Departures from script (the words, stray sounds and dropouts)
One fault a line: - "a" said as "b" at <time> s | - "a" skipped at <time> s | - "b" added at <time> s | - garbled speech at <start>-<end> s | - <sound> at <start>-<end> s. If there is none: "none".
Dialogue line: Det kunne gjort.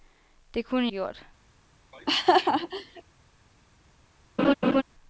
- laugh at 1.9-3.0 s
- laugh at 4.4-4.8 s